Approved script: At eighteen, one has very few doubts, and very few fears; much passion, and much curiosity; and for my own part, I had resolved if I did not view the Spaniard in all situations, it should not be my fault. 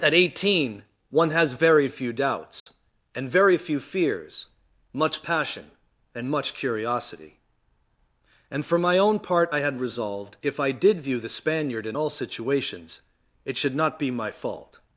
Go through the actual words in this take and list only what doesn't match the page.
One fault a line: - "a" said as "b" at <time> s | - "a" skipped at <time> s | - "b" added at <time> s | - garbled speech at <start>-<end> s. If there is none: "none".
- "not" skipped at 11.0 s